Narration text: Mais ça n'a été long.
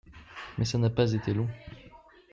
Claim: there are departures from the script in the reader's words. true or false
true